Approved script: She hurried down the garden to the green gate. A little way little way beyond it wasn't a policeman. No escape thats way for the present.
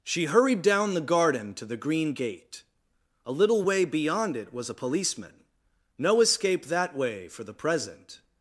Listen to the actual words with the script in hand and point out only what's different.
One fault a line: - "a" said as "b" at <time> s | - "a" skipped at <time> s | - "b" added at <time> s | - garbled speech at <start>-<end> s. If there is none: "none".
- "little way" skipped at 3.8 s
- "wasn't" said as "was" at 4.5 s
- "thats" said as "that" at 6.7 s